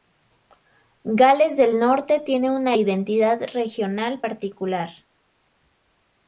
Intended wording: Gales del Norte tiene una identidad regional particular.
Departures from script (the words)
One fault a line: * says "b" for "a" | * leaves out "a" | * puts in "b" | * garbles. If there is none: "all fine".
all fine